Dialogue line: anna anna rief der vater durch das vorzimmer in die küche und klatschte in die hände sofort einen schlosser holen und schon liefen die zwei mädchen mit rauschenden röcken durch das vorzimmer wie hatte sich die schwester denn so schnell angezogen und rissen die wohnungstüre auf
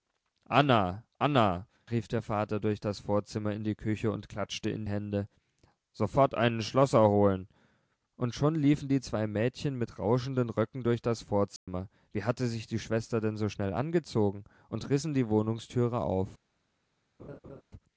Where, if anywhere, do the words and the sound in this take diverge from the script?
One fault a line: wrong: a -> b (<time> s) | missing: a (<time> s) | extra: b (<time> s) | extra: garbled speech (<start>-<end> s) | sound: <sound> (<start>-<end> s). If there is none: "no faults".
missing: die (4.9 s)
sound: dropout (11.6-11.7 s)
sound: laugh (17.2-17.6 s)